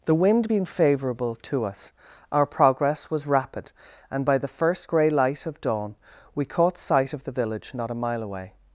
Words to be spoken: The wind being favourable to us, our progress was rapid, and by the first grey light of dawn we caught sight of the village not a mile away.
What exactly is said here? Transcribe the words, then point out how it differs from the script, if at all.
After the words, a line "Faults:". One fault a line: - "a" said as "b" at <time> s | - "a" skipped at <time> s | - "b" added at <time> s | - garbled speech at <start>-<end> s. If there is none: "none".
The wind being favourable to us, our progress was rapid, and by the first grey light of dawn we caught sight of the village not a mile away.
Faults:
none